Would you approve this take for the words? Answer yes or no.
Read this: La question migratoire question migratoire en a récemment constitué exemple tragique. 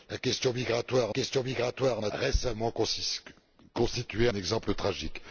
yes